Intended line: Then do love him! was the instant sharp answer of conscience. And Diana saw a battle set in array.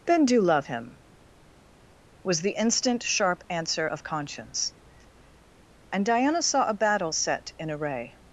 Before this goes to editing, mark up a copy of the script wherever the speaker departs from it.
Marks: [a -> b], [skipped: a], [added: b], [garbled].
Then do love him! was the instant sharp answer of conscience. And Diana saw a battle set in array.